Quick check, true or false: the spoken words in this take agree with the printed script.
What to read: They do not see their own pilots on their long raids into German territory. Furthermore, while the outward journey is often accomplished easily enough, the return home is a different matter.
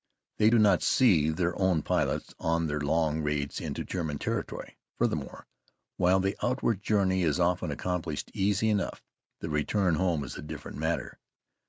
true